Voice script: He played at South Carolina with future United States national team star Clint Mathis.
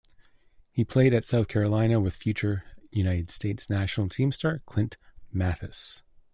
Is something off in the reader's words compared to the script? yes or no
no